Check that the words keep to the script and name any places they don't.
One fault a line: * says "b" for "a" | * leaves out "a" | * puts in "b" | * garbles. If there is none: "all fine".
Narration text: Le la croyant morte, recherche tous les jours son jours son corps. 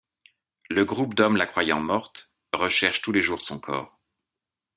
* puts in "groupe d'hommes"
* leaves out "jours son"